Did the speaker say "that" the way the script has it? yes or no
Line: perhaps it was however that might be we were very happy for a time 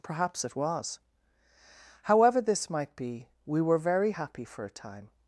no